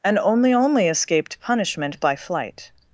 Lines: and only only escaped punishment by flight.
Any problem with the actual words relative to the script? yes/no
no